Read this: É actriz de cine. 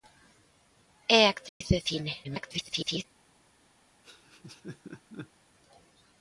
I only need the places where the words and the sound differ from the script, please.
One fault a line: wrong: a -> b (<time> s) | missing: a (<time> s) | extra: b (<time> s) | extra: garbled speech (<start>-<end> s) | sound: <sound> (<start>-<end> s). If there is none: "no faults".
sound: dropout (1.5-1.6 s)
extra: garbled speech (2.2-3.0 s)
sound: laugh (4.0-5.3 s)